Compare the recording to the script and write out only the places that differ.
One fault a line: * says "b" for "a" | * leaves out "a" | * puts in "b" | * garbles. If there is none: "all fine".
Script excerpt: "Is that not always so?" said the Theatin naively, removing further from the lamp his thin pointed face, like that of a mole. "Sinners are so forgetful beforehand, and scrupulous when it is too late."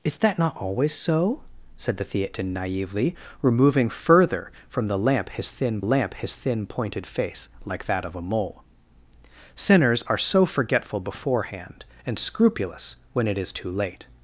* puts in "lamp his thin"